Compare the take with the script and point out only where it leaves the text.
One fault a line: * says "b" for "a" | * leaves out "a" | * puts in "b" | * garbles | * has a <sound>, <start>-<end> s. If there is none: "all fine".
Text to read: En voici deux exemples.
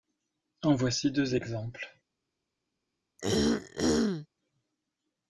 * has a throat clearing, 3.2-4.3 s